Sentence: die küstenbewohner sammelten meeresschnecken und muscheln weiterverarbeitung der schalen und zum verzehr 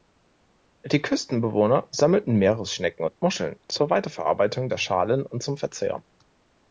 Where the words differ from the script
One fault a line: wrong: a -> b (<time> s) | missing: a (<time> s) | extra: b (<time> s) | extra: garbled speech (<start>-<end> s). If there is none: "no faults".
extra: zur (3.7 s)